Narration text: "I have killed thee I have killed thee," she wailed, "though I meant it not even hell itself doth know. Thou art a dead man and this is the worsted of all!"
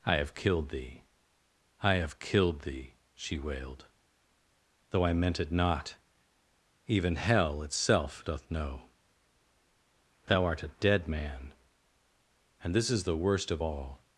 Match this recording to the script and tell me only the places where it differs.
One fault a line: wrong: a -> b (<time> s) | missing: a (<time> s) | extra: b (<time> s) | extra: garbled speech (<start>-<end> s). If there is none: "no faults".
wrong: worsted -> worst (13.2 s)